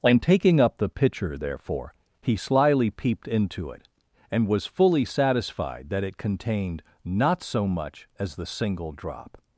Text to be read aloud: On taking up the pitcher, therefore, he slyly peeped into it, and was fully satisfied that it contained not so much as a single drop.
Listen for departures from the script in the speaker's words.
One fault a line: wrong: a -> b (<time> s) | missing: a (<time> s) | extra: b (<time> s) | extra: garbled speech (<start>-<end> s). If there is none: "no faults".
wrong: a -> the (8.3 s)